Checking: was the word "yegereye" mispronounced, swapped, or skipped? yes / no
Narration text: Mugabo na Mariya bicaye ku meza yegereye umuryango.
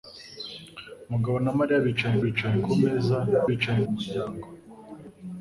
yes